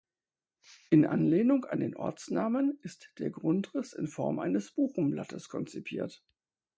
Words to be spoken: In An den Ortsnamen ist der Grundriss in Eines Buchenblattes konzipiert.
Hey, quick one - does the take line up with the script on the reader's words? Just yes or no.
no